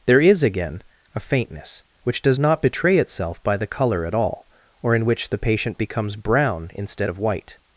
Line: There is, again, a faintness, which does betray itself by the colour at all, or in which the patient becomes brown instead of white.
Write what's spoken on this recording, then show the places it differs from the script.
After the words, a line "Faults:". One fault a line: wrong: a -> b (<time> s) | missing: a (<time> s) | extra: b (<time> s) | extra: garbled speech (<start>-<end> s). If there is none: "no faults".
There is, again, a faintness, which does not betray itself by the colour at all, or in which the patient becomes brown instead of white.
Faults:
extra: not (2.4 s)